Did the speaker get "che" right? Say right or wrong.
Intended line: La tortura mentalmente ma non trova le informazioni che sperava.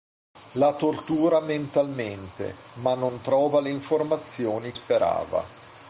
wrong